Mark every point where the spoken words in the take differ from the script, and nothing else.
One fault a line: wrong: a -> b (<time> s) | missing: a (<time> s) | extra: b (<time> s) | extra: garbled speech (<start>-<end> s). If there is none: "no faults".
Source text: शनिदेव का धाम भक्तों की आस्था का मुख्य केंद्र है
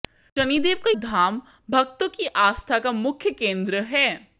no faults